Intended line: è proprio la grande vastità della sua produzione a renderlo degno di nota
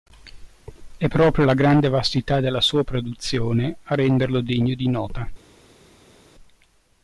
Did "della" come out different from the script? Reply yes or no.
no